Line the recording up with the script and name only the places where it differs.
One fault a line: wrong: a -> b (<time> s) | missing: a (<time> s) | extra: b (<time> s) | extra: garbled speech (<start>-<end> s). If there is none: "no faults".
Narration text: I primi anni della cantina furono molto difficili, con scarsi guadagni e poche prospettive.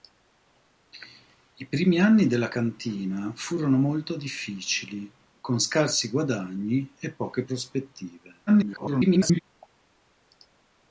extra: garbled speech (8.5-9.4 s)